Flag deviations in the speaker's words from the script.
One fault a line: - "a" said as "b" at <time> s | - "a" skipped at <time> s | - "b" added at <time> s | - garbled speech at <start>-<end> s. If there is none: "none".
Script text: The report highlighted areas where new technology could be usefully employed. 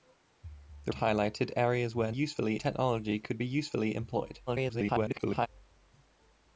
- "report" skipped at 0.9 s
- "new" said as "usefully" at 2.1 s
- garbled speech at 4.5-5.5 s